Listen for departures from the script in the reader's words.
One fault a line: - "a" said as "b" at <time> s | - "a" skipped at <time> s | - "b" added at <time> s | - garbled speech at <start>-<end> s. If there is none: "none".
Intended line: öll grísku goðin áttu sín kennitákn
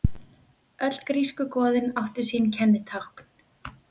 none